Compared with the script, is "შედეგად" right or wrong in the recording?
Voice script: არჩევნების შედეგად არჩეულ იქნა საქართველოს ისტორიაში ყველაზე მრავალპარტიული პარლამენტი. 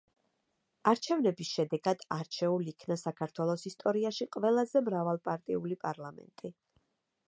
right